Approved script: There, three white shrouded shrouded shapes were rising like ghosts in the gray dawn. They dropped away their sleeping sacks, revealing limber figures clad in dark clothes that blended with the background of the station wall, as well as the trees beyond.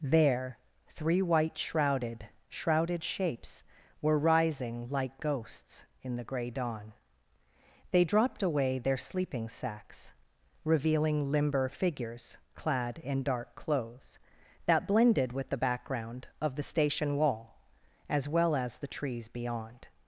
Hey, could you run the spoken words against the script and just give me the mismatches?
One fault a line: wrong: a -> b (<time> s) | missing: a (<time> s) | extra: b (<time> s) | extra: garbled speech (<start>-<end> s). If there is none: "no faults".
no faults